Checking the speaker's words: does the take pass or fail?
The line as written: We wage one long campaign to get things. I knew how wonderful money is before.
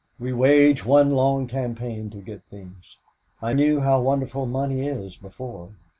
pass